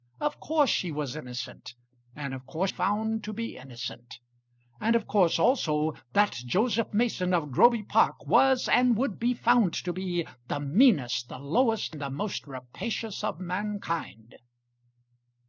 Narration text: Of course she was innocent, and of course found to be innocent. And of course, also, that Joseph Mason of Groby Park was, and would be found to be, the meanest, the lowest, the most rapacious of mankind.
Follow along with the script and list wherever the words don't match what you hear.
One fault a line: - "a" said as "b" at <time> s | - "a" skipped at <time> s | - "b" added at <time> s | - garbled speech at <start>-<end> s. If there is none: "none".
none